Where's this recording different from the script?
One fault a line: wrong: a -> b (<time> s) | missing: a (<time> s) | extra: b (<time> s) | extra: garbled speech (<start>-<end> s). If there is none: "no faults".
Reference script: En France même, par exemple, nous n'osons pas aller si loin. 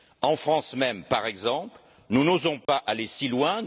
no faults